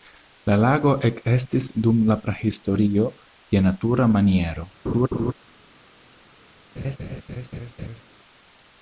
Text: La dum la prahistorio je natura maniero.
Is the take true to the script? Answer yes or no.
no